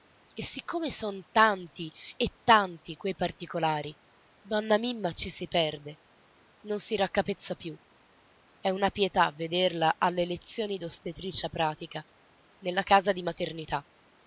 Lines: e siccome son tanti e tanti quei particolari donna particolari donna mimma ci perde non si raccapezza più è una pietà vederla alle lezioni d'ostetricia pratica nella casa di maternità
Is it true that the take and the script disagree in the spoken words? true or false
true